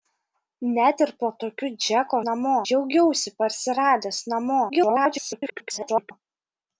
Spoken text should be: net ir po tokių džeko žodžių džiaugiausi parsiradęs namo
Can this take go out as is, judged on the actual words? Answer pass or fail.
fail